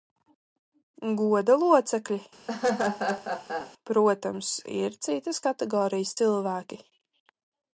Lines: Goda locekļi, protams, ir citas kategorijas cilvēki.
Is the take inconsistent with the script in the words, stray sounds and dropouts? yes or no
yes